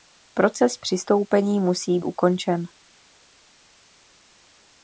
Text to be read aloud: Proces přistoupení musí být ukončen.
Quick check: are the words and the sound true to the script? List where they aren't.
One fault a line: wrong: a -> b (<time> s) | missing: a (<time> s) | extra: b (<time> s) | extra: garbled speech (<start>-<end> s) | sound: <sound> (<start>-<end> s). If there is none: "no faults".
missing: být (2.0 s)